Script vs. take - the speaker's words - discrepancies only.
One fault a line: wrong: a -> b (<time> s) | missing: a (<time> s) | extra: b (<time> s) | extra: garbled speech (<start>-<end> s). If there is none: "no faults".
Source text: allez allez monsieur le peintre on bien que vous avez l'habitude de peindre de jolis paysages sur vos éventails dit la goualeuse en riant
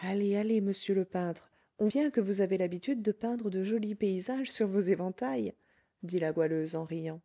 no faults